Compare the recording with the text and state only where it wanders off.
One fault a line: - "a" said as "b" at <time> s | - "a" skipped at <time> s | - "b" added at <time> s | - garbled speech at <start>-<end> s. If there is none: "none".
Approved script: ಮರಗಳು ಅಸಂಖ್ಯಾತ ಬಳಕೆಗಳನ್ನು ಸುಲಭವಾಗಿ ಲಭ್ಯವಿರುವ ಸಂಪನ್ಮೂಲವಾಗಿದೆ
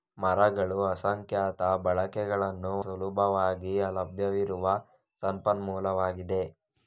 none